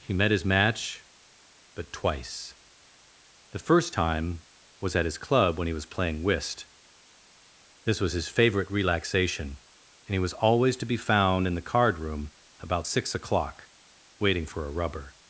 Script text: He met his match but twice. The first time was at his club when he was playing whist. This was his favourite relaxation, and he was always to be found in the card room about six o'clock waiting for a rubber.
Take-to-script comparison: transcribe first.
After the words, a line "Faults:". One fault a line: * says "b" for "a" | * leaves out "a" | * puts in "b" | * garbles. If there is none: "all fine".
He met his match but twice. The first time was at his club when he was playing whist. This was his favourite relaxation, and he was always to be found in the card room about six o'clock waiting for a rubber.
Faults:
all fine